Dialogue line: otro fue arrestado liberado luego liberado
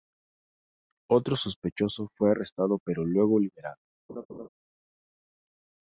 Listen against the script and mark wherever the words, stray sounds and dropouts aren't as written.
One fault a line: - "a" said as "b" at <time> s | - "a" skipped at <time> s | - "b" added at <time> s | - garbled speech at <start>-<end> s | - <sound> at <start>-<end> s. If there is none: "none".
- "sospechoso" added at 1.4 s
- "liberado" said as "pero" at 2.8 s
- laugh at 4.1-4.5 s